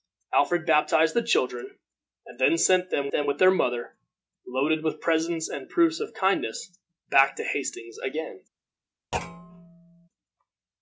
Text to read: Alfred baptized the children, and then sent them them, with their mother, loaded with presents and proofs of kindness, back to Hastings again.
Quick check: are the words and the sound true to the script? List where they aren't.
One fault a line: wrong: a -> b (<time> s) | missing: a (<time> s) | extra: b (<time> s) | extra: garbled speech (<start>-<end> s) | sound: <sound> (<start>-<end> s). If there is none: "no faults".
sound: thud (9.1-10.1 s)